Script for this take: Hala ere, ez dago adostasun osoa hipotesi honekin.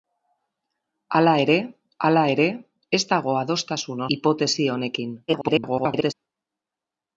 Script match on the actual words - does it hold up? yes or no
no